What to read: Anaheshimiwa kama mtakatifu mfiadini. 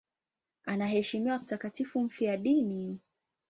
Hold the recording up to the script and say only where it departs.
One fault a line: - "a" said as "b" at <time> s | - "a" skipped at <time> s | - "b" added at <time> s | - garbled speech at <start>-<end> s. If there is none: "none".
- "kama" skipped at 1.4 s